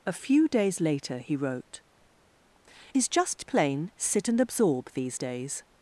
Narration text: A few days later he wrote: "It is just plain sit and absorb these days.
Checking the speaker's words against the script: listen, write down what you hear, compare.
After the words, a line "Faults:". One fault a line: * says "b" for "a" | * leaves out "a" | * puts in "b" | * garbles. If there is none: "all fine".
A few days later he wrote: "Is just plain sit and absorb these days.
Faults:
* leaves out "It"